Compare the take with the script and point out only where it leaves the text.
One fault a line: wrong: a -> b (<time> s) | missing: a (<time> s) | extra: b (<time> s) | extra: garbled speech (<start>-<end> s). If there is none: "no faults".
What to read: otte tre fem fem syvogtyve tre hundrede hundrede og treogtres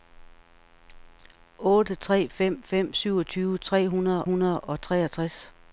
no faults